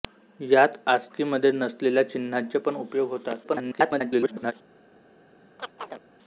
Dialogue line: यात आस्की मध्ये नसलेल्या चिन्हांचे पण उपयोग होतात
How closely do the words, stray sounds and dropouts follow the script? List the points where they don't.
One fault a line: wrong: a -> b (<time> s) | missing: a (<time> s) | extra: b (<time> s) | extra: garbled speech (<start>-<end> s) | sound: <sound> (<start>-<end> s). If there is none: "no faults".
extra: garbled speech (3.4-4.5 s)
sound: chirp (5.6-6.0 s)